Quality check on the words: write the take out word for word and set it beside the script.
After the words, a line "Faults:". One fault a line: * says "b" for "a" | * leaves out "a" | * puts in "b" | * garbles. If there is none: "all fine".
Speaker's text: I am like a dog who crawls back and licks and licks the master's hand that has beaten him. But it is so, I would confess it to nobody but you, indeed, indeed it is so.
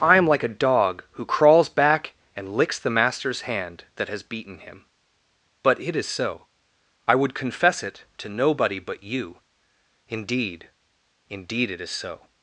I am like a dog who crawls back and licks the master's hand that has beaten him. But it is so, I would confess it to nobody but you, indeed, indeed it is so.
Faults:
* leaves out "and licks"